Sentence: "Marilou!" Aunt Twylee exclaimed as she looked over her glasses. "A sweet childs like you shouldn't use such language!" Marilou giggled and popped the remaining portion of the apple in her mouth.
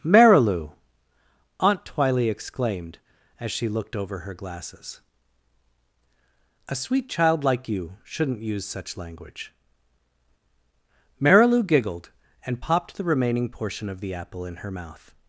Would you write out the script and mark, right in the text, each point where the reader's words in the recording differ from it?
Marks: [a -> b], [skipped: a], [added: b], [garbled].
"Marilou!" Aunt Twylee exclaimed as she looked over her glasses. "A sweet [childs -> child] like you shouldn't use such language!" Marilou giggled and popped the remaining portion of the apple in her mouth.